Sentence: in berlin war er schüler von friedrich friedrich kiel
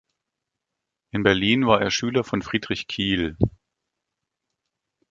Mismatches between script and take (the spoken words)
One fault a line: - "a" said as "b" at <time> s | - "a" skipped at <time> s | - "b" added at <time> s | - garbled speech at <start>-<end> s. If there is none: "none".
- "friedrich" skipped at 2.9 s